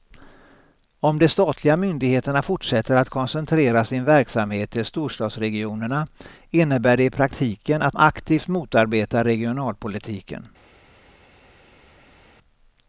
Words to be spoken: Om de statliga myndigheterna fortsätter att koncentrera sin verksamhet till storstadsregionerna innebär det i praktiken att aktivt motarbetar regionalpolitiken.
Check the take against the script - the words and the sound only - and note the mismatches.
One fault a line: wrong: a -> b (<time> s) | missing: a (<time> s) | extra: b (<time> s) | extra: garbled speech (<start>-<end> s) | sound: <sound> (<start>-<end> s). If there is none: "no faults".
no faults